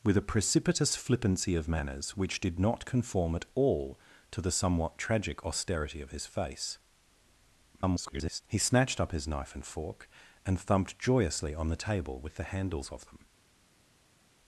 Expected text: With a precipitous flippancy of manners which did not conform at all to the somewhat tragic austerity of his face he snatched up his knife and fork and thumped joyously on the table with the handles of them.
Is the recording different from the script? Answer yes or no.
yes